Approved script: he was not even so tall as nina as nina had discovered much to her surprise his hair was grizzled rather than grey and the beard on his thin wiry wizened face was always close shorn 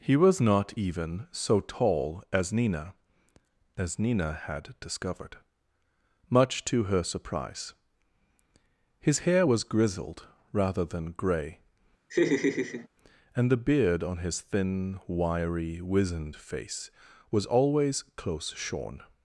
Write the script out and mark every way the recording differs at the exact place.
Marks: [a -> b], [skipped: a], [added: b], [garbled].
he was not even so tall as nina as nina had discovered much to her surprise his hair was grizzled rather than grey and the beard on his thin wiry wizened face was always close shorn